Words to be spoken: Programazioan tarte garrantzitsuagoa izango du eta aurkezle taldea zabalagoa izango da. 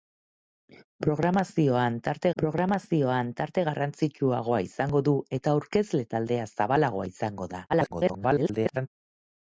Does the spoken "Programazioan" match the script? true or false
true